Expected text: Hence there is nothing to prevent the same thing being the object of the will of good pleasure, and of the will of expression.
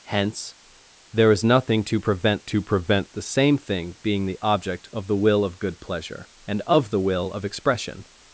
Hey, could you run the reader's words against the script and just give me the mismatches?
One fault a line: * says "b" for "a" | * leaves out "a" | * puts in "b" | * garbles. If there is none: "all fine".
* puts in "to prevent"